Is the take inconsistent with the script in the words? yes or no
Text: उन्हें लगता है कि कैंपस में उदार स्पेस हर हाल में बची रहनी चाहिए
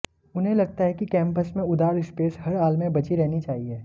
no